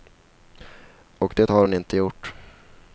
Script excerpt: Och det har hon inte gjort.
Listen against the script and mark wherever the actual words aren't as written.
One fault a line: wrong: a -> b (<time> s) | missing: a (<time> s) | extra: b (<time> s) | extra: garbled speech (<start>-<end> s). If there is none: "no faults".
no faults